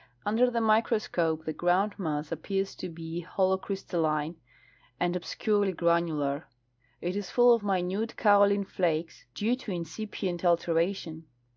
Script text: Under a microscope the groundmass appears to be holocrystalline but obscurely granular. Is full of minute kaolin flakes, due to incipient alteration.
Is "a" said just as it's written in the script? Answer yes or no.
no